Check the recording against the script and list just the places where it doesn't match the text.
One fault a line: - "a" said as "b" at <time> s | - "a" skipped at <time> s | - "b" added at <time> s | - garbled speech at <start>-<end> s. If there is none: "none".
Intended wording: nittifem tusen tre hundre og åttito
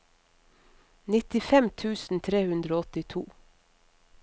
none